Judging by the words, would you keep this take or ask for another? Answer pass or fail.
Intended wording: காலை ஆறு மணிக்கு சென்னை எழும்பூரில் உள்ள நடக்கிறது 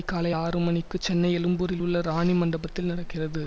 fail